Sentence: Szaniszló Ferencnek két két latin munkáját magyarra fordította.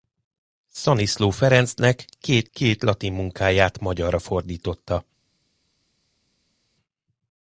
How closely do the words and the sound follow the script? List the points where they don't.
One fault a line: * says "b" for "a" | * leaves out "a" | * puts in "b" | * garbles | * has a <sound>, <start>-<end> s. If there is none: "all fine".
all fine